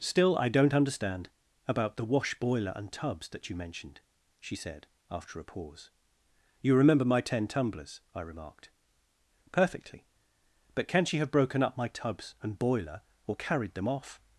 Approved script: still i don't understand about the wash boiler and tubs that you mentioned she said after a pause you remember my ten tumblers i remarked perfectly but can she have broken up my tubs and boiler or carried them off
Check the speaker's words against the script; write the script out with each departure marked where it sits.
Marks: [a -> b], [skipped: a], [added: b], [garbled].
still i don't understand about the wash boiler and tubs that you mentioned she said after a pause you remember my ten tumblers i remarked perfectly but can she have broken up my tubs and boiler or carried them off